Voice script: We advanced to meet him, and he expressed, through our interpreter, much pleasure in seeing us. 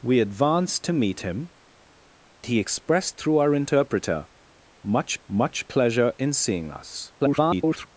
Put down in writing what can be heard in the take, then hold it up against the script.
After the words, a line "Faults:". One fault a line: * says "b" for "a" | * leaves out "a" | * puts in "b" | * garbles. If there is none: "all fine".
We advanced to meet him, he expressed, through our interpreter, much much pleasure in seeing us. [garbled]
Faults:
* leaves out "and"
* puts in "much"
* garbles